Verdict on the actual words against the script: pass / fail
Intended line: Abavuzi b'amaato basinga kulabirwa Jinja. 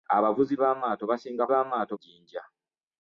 fail